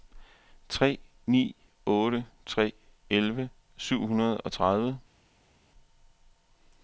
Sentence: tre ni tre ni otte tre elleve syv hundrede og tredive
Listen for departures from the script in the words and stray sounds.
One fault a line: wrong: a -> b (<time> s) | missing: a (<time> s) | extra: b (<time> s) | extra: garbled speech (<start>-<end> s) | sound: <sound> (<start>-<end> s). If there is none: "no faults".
missing: tre ni (1.6 s)